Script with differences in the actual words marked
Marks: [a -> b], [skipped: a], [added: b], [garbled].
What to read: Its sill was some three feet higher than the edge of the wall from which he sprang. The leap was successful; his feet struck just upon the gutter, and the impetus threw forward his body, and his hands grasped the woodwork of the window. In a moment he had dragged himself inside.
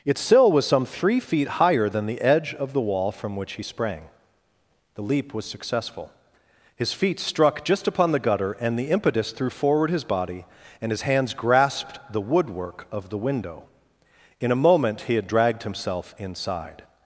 Its sill was some three feet higher than the edge of the wall from which he sprang. The leap was successful; his feet struck just upon the gutter, and the impetus threw forward his body, and his hands grasped the woodwork of the window. In a moment he had dragged himself inside.